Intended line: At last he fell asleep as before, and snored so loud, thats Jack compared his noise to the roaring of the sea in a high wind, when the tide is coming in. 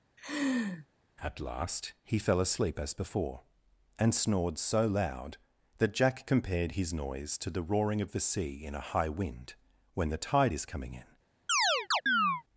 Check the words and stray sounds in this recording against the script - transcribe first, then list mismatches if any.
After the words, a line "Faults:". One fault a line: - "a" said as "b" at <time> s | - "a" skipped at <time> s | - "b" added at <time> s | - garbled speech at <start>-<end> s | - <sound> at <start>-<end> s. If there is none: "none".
At last he fell asleep as before, and snored so loud, that Jack compared his noise to the roaring of the sea in a high wind, when the tide is coming in.
Faults:
- laugh at 0.2-0.9 s
- "thats" said as "that" at 5.8 s
- chirp at 11.5-12.4 s